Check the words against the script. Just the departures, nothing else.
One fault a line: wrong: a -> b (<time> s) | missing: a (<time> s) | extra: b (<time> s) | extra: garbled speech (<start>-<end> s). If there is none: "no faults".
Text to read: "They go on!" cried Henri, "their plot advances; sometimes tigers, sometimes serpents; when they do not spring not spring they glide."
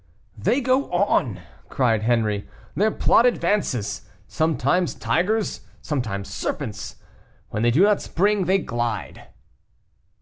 missing: not spring (8.4 s)